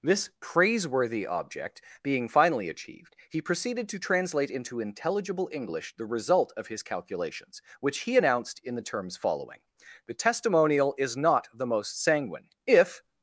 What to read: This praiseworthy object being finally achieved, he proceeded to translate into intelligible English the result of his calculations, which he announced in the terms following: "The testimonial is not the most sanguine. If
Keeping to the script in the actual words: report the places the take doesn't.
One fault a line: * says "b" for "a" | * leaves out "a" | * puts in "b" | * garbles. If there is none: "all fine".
all fine